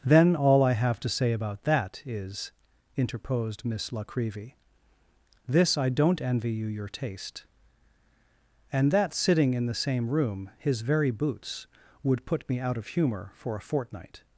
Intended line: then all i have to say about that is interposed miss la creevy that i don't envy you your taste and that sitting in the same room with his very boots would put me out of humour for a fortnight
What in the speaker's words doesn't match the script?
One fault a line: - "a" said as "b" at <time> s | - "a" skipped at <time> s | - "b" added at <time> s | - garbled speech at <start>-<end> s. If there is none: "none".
- "that" said as "this" at 5.5 s
- "with" skipped at 10.5 s